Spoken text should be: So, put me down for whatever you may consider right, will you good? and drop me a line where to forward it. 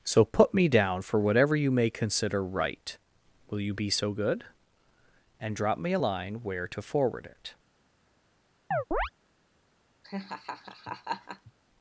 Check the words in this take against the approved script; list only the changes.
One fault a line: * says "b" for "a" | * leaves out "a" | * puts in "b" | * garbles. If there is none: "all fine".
* puts in "be so"